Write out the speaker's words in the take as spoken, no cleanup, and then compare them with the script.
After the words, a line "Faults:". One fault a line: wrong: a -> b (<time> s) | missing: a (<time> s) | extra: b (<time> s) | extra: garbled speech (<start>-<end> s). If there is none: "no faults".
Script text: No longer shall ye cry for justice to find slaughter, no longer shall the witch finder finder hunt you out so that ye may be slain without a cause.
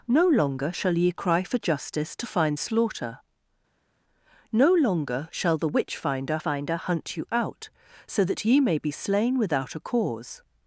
No longer shall ye cry for justice to find slaughter, no longer shall the witch finder finder hunt you out so that ye may be slain without a cause.
Faults:
no faults